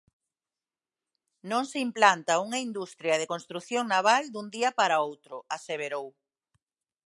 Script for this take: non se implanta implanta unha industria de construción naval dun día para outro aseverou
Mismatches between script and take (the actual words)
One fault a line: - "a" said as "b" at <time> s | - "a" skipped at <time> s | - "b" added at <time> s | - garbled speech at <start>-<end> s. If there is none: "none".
- "implanta" skipped at 2.4 s